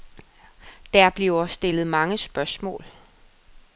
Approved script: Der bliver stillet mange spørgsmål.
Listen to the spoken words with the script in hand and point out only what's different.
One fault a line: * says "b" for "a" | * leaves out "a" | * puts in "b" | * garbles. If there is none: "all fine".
all fine